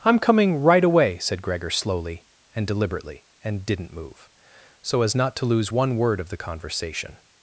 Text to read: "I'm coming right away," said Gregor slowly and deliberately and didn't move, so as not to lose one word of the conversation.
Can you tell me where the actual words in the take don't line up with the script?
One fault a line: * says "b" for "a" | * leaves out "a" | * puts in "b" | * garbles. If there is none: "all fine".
all fine